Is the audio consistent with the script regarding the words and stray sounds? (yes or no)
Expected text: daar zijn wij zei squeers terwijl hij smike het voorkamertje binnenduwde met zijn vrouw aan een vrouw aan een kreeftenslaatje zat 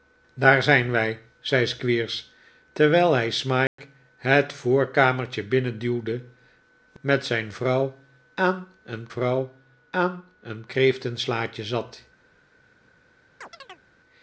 no